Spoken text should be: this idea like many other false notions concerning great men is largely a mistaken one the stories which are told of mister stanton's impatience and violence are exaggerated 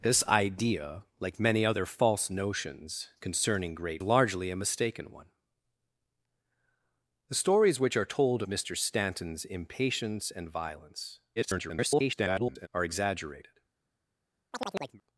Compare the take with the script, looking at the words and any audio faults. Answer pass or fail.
fail